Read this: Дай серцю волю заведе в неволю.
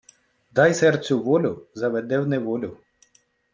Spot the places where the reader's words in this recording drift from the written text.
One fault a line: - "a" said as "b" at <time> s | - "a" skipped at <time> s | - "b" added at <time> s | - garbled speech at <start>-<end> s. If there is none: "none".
none